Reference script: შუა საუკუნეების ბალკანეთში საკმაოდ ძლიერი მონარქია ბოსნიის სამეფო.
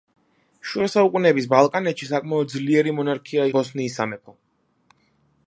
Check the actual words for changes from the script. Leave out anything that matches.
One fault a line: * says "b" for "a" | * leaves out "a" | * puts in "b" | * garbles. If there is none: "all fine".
all fine